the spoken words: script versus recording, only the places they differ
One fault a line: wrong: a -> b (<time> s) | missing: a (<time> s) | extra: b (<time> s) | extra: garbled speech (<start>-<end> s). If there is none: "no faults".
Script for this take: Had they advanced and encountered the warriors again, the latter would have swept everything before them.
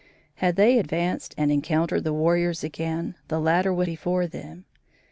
missing: have swept everything (3.9 s)